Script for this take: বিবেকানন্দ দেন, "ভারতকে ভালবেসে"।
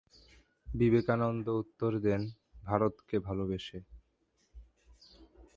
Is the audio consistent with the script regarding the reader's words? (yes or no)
no